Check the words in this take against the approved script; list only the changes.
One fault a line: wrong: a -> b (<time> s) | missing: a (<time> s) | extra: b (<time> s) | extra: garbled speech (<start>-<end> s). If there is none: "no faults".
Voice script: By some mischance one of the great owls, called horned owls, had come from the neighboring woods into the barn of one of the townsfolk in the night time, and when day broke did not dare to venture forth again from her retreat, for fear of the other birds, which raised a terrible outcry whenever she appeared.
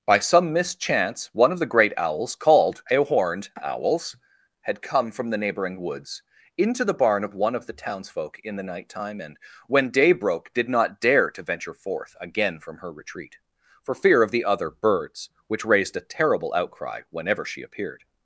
extra: a (2.9 s)